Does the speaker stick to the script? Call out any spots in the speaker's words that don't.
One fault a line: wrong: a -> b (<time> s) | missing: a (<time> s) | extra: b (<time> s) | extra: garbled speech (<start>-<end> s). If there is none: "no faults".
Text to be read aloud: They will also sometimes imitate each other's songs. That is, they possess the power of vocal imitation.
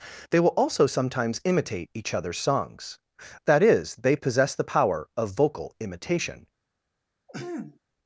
no faults